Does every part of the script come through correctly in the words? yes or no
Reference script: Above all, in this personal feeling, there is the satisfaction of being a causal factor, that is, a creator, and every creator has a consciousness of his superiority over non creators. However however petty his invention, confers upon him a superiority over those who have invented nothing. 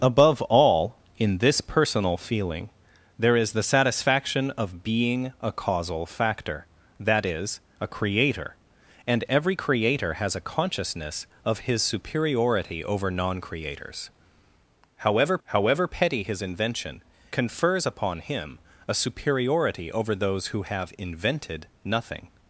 yes